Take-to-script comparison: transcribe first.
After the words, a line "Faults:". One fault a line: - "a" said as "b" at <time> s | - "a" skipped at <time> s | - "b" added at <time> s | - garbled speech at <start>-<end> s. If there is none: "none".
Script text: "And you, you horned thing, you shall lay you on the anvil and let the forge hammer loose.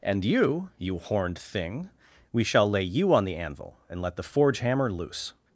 "And you, you horned thing, we shall lay you on the anvil and let the forge hammer loose.
Faults:
- "you" said as "we" at 2.3 s